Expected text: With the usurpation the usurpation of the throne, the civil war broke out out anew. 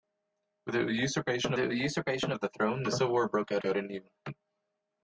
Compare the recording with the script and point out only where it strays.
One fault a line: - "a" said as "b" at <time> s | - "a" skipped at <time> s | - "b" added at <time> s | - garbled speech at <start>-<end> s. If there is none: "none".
none